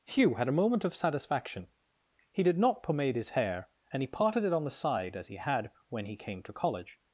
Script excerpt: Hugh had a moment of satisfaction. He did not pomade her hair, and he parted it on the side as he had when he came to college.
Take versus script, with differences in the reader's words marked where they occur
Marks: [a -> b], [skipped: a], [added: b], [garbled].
Hugh had a moment of satisfaction. He did not pomade [her -> his] hair, and he parted it on the side as he had when he came to college.